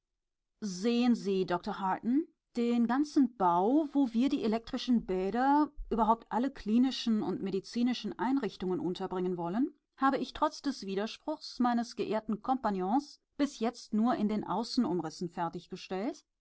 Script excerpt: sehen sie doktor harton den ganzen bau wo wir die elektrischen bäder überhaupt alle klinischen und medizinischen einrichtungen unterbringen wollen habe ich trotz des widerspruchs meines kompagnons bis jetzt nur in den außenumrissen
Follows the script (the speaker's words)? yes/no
no